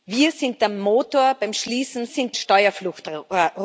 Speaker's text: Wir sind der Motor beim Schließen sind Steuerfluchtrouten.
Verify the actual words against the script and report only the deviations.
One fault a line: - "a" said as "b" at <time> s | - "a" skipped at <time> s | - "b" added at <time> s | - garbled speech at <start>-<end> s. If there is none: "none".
none